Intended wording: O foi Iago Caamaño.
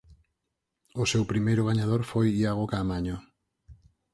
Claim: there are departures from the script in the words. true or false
true